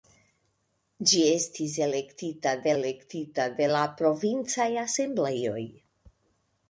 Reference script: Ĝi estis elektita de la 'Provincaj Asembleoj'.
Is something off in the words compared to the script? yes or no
yes